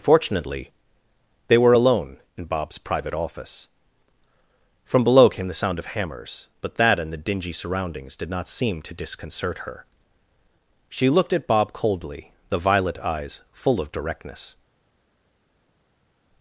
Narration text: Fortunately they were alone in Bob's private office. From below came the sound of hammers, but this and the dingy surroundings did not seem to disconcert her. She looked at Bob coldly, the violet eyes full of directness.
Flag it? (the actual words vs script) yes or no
yes